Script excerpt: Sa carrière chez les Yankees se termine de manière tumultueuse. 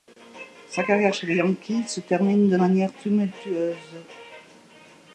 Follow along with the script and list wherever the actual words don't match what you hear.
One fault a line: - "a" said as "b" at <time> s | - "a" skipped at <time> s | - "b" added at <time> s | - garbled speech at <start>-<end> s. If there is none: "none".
none